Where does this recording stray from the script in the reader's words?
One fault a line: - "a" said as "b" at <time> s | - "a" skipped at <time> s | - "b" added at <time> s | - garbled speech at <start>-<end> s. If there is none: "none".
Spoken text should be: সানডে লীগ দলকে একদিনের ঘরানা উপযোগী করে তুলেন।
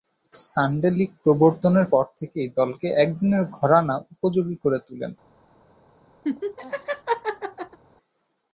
- "প্রবর্তনের পর থেকেই" added at 1.2 s